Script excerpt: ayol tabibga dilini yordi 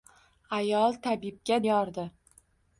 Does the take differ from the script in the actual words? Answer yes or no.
yes